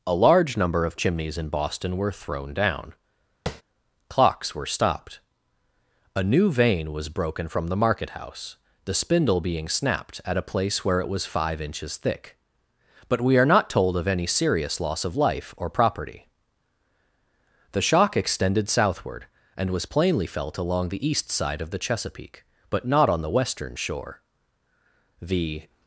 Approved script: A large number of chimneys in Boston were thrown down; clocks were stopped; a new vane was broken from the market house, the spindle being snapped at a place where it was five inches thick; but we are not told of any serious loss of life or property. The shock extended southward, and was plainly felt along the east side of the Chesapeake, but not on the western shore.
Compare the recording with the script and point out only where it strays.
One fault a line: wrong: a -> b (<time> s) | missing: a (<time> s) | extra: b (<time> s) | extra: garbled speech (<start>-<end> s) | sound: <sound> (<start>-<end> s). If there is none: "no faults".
sound: tap (3.5-3.6 s)
extra: The (25.2 s)